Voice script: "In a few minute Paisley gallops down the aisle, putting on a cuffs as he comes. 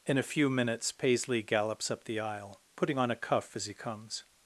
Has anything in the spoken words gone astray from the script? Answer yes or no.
yes